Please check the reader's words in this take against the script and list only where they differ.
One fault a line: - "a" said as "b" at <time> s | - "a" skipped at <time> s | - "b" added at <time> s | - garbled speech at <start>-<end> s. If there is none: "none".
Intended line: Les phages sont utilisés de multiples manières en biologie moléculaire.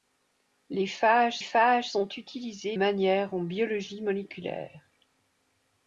- "phages" added at 1.4 s
- "de multiples" skipped at 2.8 s